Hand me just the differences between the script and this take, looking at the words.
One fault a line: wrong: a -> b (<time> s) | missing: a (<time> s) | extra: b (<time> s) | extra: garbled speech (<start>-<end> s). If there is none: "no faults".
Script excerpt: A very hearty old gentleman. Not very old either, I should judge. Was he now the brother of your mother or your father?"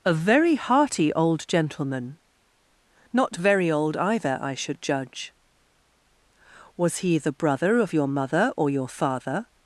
missing: now (7.2 s)